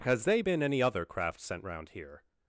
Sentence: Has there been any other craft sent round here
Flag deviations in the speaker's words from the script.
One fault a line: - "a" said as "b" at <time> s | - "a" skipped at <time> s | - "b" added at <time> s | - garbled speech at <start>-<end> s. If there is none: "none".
- "there" said as "they" at 0.2 s